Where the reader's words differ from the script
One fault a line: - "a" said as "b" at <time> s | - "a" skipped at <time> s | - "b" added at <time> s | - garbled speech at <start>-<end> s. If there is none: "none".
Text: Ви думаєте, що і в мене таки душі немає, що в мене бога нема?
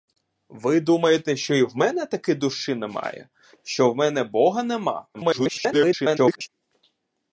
- garbled speech at 5.1-6.5 s